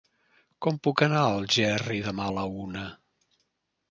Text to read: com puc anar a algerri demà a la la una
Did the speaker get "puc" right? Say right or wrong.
right